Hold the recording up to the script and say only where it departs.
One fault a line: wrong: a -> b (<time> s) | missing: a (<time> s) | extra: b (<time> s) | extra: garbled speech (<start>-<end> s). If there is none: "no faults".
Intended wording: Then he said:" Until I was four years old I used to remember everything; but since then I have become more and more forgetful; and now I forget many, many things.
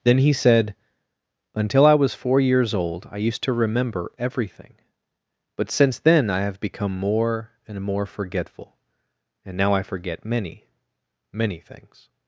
no faults